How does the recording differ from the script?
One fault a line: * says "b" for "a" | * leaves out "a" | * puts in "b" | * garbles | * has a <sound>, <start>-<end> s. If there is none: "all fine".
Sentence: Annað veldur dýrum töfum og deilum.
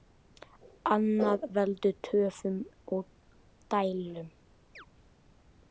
* leaves out "dýrum"
* has a chirp, 4.8-4.9 s